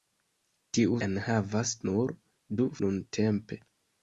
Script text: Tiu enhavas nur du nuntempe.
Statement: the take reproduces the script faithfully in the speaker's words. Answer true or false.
true